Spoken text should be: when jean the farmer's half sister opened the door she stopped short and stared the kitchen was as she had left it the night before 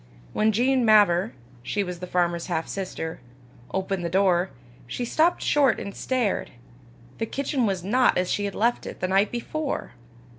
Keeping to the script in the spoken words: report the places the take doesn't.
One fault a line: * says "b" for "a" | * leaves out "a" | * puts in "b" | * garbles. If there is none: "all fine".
* puts in "mavor she was"
* puts in "not"